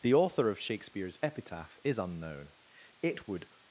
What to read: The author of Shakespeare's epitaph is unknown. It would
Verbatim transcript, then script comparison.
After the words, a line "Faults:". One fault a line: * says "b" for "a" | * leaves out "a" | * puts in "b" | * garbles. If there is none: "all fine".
The author of Shakespeare's epitaph is unknown. It would
Faults:
all fine